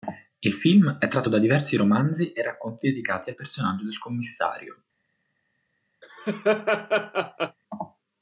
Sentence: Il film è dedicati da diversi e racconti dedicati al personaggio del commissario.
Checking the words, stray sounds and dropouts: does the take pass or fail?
fail